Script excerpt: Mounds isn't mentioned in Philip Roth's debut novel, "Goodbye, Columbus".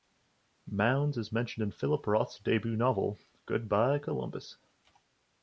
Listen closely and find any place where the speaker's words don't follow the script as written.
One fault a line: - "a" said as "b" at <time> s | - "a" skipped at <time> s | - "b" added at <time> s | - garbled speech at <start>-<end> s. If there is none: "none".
- "isn't" said as "is" at 1.1 s